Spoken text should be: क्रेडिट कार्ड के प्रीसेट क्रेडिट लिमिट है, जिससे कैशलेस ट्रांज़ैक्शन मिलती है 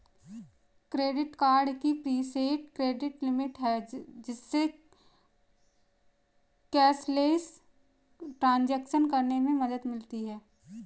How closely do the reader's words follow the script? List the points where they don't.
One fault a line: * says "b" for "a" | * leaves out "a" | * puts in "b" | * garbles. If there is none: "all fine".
* says "की" for "के"
* puts in "करने में मदद"